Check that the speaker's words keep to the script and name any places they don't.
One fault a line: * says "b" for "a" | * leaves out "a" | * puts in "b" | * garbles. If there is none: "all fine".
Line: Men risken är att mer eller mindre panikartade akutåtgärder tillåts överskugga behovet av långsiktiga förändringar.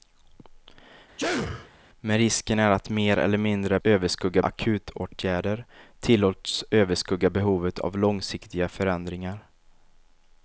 * says "överskugga" for "panikartade"